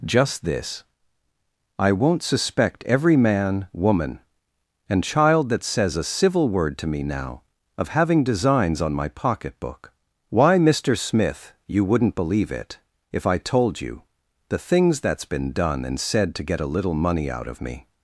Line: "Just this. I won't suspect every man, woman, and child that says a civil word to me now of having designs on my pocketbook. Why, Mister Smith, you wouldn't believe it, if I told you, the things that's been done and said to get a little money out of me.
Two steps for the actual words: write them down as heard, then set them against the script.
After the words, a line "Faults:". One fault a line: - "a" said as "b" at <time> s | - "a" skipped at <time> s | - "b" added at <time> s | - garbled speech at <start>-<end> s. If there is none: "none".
"Just this. I won't suspect every man, woman, and child that says a civil word to me now of having designs on my pocketbook. Why, Mister Smith, you wouldn't believe it, if I told you, the things that's been done and said to get a little money out of me.
Faults:
none